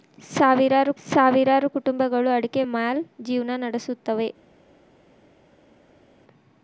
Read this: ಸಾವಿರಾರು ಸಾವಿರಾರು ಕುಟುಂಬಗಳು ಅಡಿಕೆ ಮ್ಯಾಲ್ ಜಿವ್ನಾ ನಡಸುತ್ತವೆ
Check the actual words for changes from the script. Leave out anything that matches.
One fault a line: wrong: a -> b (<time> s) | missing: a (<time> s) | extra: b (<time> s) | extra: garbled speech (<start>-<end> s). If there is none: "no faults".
no faults